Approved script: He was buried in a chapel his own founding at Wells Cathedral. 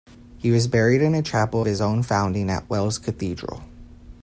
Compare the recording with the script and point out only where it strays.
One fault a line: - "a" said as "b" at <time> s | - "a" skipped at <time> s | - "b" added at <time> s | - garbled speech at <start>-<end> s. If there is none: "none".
none